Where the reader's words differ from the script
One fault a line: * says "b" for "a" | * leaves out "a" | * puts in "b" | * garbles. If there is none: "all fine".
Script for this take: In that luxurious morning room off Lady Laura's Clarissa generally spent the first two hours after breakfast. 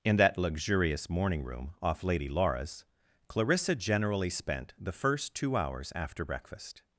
all fine